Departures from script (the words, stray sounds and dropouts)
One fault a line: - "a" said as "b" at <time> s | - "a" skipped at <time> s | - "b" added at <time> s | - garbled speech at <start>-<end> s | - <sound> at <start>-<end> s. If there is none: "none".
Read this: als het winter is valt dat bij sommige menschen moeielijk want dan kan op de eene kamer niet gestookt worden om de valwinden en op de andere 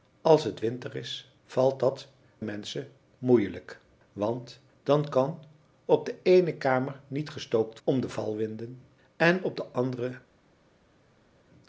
- "bij sommige" skipped at 2.1 s
- "worden" skipped at 7.8 s